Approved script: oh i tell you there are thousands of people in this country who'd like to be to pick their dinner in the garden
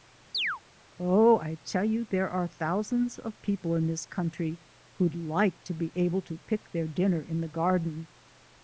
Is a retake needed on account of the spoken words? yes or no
yes